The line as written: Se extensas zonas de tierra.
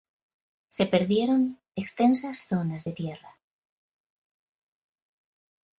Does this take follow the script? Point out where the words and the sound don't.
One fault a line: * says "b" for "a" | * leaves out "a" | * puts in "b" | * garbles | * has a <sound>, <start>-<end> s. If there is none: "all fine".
* puts in "perdieron"